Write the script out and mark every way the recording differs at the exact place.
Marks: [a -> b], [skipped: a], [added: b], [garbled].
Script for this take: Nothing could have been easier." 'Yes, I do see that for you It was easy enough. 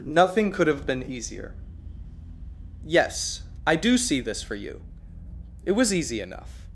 Nothing could have been easier." 'Yes, I do see [that -> this] for you It was easy enough.